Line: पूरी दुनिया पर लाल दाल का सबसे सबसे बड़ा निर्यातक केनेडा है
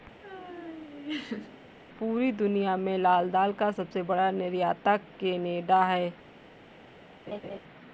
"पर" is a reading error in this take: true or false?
true